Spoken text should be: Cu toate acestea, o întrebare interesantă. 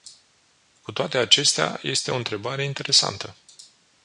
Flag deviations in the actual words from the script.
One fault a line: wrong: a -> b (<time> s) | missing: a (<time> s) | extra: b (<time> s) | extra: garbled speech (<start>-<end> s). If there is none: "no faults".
extra: este (1.8 s)